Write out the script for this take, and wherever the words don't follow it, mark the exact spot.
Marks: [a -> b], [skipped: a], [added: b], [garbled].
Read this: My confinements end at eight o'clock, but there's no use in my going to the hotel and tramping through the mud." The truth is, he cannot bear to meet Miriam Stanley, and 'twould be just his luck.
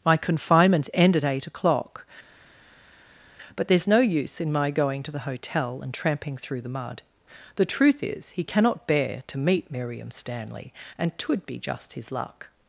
My confinements end at eight o'clock, but there's no use in my going to the hotel and tramping through the mud." The truth is, he cannot bear to meet Miriam Stanley, and 'twould be just his luck.